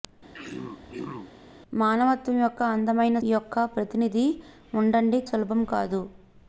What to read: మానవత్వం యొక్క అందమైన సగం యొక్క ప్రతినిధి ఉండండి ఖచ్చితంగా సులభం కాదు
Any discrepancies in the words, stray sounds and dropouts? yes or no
yes